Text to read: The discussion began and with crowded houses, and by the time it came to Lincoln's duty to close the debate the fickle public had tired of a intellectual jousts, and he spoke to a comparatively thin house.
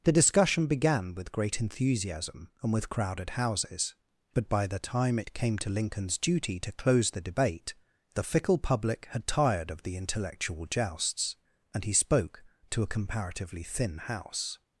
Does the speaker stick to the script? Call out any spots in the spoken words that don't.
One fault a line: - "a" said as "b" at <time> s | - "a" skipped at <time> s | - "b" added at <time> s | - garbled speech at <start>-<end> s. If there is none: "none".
- "with great enthusiasm" added at 1.1 s
- "and" said as "but" at 4.3 s
- "a" said as "the" at 9.8 s